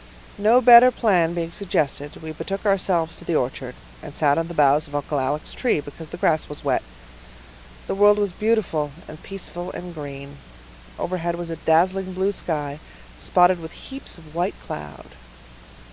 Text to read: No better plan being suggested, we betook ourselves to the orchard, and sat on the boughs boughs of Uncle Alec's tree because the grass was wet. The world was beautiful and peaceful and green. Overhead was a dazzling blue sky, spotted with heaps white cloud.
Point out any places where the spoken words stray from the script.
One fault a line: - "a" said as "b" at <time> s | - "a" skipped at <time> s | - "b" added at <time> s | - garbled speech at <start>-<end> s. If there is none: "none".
- "boughs" skipped at 4.9 s
- "of" added at 14.2 s